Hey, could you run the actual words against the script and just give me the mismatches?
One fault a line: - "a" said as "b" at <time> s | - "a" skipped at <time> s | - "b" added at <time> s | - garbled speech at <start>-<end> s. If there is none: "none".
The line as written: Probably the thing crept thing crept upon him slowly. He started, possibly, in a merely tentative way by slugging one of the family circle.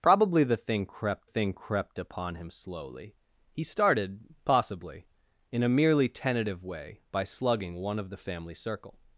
none